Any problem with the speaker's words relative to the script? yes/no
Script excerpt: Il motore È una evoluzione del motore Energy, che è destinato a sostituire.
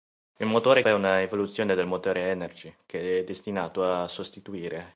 no